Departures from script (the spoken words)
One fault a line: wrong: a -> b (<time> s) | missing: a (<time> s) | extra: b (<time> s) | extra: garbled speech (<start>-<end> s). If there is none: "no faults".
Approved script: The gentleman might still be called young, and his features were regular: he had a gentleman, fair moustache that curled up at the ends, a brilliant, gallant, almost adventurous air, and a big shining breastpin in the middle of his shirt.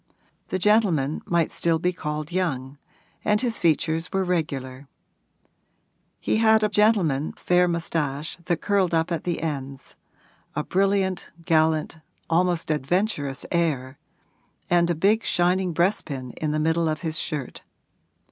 no faults